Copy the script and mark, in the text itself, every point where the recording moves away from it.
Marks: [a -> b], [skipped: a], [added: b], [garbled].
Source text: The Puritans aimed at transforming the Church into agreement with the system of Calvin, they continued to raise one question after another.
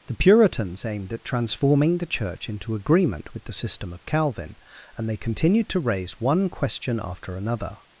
The Puritans aimed at transforming the Church into agreement with the system of Calvin, [added: and] they continued to raise one question after another.